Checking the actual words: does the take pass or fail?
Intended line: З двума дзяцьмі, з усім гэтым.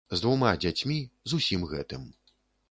pass